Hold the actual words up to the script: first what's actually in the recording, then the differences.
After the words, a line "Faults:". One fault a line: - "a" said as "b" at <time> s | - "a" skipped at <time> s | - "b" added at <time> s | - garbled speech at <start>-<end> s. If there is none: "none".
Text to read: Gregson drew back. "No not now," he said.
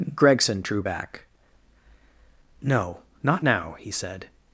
Gregson drew back. "No not now," he said.
Faults:
none